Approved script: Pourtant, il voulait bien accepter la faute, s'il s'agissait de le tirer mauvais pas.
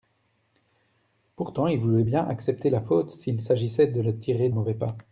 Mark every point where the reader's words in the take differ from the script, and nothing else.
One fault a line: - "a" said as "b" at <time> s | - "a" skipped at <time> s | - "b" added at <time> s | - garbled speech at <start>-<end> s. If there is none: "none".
none